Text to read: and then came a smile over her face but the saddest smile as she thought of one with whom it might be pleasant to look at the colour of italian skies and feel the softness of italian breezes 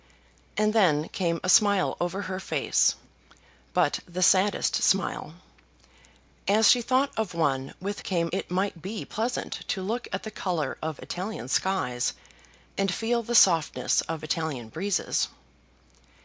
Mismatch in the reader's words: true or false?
true